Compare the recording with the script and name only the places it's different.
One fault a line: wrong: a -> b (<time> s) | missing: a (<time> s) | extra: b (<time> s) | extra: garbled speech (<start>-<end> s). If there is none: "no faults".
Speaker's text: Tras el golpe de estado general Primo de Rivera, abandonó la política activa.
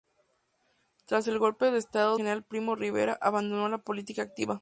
no faults